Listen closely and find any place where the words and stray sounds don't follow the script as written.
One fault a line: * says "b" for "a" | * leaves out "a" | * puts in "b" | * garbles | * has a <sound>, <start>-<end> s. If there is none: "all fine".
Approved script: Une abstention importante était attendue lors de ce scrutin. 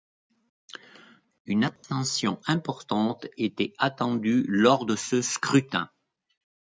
* has a dropout, 1.8-1.8 s